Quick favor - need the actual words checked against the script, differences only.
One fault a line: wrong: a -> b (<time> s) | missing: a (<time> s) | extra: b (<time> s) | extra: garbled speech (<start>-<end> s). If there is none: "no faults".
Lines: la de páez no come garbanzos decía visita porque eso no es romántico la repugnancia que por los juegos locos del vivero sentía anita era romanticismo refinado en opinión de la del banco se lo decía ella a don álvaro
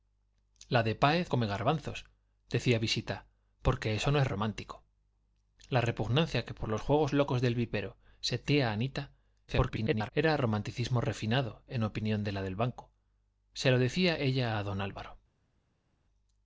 missing: no (1.3 s)
extra: garbled speech (9.5-10.1 s)